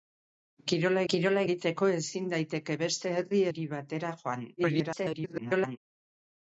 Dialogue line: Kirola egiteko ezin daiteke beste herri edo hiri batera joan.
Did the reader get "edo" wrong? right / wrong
wrong